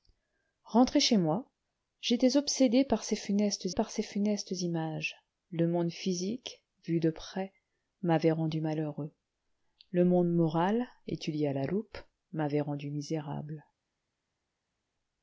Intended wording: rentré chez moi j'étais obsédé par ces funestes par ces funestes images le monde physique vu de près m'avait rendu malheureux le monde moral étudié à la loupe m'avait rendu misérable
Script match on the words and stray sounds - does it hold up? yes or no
yes